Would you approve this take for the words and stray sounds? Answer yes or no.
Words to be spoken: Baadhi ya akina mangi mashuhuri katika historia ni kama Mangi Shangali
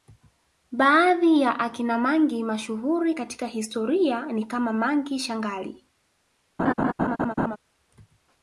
no